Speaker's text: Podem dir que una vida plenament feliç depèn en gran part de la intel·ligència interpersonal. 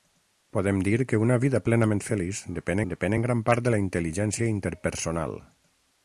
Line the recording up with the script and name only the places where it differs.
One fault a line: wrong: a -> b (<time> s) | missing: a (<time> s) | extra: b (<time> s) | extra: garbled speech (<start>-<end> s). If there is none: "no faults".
extra: depèn (2.9 s)